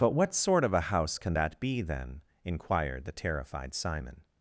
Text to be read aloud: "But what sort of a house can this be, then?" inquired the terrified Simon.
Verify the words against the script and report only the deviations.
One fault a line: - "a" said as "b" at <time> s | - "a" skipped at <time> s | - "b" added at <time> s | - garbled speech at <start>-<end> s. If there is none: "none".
- "this" said as "that" at 1.3 s